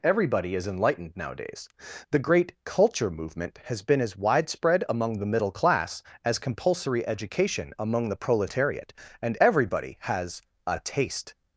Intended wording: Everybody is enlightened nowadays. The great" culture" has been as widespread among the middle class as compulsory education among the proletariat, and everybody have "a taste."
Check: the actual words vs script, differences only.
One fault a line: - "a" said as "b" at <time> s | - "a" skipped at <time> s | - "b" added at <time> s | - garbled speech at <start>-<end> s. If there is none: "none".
- "movement" added at 3.1 s
- "have" said as "has" at 10.0 s